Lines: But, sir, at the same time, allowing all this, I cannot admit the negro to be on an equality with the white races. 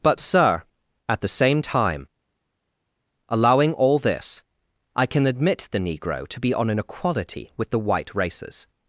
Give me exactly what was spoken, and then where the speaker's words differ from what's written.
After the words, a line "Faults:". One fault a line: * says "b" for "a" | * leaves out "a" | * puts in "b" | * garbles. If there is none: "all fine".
But, sir, at the same time, allowing all this, I can admit the negro to be on an equality with the white races.
Faults:
* says "can" for "cannot"